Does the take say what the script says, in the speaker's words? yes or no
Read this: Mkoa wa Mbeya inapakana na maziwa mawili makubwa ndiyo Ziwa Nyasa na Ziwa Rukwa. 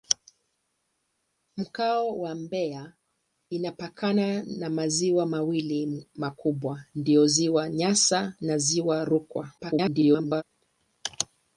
no